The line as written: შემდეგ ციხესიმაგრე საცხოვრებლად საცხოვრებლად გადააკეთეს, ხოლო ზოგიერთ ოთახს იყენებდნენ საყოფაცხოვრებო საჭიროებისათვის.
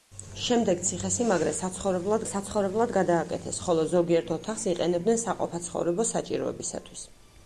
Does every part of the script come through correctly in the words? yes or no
yes